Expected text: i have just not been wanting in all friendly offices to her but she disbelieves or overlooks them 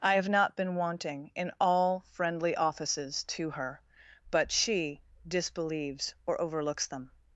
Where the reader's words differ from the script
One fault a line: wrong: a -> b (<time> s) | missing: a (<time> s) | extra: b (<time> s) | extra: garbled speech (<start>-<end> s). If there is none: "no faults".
missing: just (0.3 s)